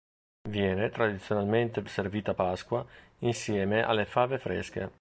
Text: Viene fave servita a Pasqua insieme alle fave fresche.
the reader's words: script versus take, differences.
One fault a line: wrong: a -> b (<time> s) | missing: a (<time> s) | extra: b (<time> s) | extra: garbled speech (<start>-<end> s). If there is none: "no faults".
wrong: fave -> tradizionalmente (0.9 s)